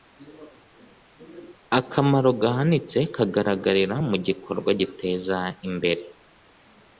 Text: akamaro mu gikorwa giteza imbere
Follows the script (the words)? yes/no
no